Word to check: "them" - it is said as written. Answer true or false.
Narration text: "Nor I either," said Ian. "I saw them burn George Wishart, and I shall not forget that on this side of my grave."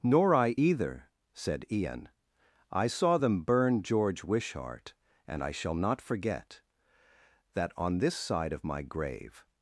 true